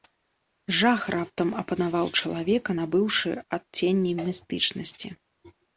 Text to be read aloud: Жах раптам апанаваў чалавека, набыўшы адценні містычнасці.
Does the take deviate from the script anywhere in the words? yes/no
no